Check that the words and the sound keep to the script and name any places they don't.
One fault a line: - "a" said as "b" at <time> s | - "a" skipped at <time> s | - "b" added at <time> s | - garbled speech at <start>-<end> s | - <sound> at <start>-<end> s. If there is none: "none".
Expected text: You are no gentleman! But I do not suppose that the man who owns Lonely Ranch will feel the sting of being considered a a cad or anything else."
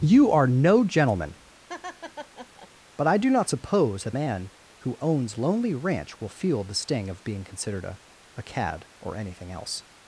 - laugh at 1.7-2.7 s
- "the" skipped at 4.2 s